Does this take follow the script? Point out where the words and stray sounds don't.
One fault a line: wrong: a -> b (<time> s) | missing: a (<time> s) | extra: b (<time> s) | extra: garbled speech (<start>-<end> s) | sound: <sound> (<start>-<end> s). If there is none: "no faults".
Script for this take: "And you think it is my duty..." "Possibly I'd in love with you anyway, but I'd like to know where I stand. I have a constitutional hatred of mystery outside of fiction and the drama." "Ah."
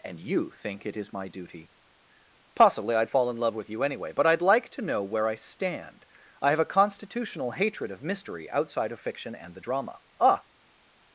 extra: fall (3.1 s)